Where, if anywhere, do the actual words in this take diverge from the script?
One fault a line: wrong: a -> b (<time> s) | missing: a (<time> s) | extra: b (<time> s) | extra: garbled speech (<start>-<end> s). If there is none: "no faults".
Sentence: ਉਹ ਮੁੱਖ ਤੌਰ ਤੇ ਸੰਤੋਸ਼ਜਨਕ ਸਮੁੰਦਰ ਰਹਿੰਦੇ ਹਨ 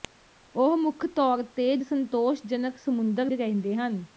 no faults